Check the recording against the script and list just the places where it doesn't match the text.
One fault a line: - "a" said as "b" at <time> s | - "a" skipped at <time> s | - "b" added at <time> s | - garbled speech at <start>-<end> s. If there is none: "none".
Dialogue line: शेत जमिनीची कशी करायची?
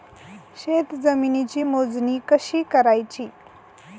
- "मोजणी" added at 1.6 s